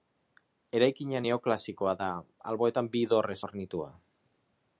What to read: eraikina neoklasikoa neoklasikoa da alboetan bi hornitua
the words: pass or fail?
fail